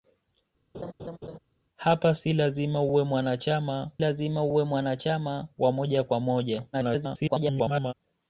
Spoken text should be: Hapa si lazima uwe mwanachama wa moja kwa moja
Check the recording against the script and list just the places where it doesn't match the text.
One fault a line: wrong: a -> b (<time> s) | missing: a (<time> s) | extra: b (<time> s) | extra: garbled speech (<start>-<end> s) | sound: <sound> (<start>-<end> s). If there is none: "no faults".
sound: laugh (0.7-1.4 s)
extra: lazima uwe mwanachama (4.0 s)
extra: garbled speech (6.7-7.9 s)